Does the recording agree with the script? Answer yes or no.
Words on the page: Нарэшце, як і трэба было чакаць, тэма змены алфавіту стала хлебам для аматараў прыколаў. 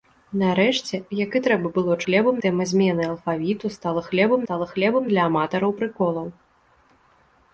no